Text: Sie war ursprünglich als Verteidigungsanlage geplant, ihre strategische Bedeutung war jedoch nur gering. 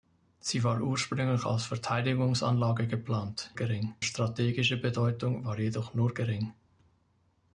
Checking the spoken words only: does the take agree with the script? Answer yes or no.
no